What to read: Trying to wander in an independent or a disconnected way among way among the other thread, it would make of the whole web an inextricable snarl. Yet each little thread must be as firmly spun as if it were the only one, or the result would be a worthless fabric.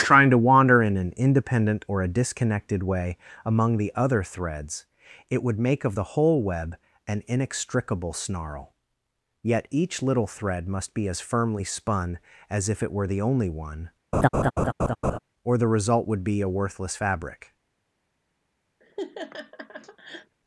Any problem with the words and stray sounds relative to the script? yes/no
yes